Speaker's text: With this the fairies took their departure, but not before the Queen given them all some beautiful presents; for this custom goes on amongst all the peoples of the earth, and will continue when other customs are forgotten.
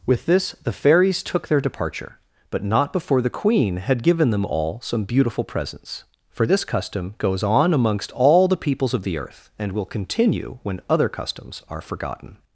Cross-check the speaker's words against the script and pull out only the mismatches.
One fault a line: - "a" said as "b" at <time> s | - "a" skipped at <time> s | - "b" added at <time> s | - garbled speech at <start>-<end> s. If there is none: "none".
- "had" added at 3.8 s